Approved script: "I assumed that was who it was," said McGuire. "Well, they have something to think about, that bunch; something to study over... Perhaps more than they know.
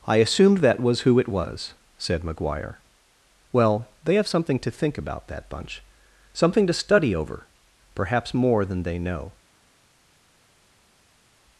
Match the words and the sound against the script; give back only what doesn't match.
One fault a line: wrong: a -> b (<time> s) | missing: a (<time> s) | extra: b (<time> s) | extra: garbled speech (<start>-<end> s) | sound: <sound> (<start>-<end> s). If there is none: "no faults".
no faults